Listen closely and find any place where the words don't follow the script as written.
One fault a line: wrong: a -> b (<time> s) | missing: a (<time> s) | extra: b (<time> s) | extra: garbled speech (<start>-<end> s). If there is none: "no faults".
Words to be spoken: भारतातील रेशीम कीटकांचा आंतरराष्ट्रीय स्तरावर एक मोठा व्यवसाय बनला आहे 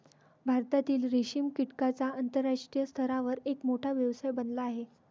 no faults